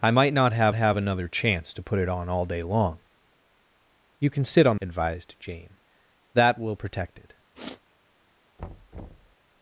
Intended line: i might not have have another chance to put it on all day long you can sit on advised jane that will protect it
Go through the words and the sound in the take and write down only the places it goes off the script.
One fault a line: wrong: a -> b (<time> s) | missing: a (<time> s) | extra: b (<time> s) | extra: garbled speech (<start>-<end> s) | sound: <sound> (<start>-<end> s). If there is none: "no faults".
sound: sniff (7.5-7.8 s)
sound: thud (8.6-9.4 s)